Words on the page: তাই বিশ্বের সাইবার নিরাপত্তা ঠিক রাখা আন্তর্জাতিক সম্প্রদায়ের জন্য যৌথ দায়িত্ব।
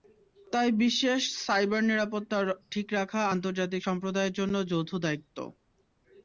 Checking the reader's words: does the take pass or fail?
pass